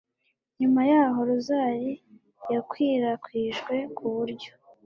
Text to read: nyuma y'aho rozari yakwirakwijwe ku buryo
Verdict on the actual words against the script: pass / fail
pass